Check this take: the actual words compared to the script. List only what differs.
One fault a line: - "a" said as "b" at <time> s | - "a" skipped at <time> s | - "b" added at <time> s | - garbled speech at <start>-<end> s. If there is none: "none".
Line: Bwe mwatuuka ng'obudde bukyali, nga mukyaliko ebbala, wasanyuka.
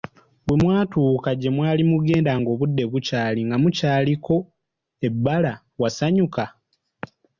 - "gye mwali mugenda" added at 1.4 s